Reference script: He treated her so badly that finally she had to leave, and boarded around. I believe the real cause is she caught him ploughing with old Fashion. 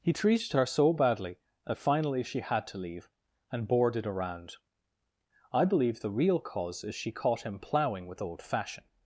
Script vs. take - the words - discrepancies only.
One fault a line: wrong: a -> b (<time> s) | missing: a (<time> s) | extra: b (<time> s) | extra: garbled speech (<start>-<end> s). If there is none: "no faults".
no faults